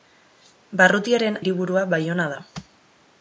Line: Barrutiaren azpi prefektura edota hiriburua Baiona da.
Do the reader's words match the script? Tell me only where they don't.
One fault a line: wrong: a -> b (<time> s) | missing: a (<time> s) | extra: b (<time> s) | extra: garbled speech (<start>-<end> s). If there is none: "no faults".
missing: azpi prefektura edota (1.4 s)